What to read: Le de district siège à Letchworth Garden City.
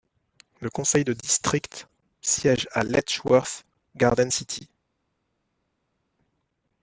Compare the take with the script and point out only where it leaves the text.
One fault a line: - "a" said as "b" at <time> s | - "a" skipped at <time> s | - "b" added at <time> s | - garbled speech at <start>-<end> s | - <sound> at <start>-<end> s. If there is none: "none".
- "conseil" added at 0.7 s